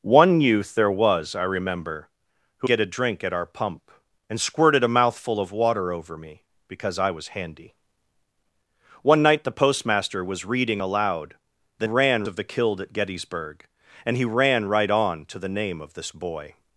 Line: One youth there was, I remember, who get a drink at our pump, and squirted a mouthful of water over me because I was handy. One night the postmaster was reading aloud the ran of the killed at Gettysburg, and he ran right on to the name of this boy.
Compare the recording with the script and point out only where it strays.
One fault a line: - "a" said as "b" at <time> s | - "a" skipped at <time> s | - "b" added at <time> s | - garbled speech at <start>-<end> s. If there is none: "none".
none